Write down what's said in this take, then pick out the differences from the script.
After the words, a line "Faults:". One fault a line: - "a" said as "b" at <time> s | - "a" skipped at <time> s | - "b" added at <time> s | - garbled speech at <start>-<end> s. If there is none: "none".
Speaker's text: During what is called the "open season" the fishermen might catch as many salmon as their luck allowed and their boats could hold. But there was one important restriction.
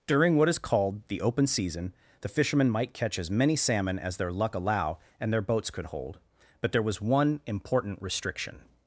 During what is called the "open season" the fishermen might catch as many salmon as their luck allow and their boats could hold. But there was one important restriction.
Faults:
- "allowed" said as "allow" at 4.5 s